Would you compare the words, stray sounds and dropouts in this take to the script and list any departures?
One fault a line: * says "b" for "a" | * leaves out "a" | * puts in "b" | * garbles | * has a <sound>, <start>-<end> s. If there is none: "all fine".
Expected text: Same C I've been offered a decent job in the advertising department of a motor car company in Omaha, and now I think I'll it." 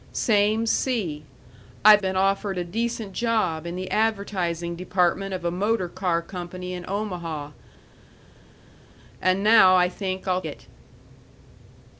all fine